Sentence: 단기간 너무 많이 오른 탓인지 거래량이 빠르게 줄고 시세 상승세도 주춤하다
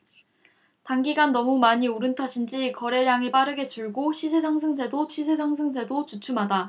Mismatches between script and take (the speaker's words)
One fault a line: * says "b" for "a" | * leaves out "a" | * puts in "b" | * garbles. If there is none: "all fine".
* puts in "시세 상승세도"